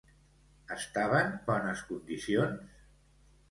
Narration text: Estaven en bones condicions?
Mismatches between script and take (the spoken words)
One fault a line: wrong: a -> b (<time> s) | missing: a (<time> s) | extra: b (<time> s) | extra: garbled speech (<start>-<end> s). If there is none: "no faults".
missing: en (1.3 s)